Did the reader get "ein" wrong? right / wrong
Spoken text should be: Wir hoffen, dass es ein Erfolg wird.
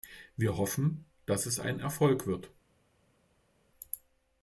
right